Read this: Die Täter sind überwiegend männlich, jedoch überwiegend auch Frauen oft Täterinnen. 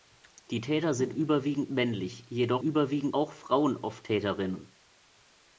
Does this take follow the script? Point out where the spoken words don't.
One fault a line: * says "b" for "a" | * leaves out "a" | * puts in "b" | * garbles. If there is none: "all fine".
all fine